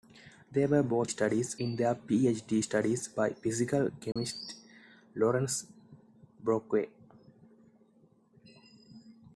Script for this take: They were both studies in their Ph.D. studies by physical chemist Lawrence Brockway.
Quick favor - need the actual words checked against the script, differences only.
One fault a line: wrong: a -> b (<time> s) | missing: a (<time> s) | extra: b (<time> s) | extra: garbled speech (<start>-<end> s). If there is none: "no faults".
no faults